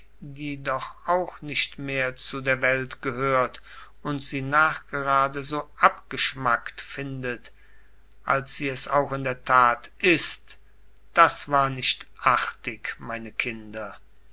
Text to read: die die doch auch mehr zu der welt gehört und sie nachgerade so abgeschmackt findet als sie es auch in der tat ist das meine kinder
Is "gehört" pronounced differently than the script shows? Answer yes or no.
no